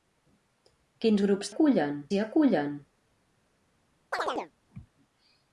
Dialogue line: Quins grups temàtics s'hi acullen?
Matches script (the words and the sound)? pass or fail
fail